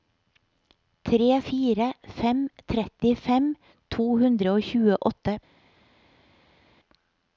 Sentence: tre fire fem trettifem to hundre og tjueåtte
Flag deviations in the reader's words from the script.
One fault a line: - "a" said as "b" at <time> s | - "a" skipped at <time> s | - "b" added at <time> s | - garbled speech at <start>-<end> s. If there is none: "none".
none